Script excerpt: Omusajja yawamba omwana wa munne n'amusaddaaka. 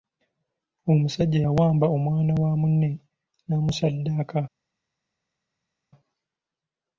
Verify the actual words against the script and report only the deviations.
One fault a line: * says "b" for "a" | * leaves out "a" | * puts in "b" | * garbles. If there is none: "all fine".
all fine